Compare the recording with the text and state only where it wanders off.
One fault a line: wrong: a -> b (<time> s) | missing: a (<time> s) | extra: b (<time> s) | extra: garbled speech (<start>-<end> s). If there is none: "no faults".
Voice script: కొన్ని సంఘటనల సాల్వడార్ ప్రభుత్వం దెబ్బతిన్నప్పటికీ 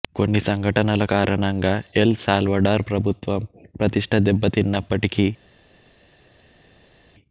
extra: కారణంగా ఎల్ (1.1 s)
extra: ప్రతిష్ఠ (3.8 s)